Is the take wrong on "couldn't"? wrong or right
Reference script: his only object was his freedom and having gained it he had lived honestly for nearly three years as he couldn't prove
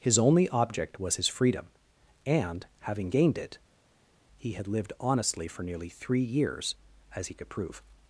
wrong